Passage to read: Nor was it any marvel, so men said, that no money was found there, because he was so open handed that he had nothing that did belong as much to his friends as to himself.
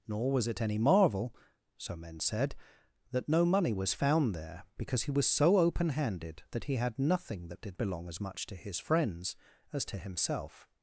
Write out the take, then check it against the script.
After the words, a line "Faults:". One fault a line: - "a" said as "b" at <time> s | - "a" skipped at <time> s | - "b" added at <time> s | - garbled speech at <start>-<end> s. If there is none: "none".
Nor was it any marvel, so men said, that no money was found there, because he was so open handed that he had nothing that did belong as much to his friends as to himself.
Faults:
none